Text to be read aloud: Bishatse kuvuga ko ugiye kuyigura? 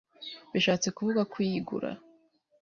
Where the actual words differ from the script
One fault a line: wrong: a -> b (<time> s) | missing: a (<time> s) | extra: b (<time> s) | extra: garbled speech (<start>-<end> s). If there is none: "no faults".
missing: ugiye (1.3 s)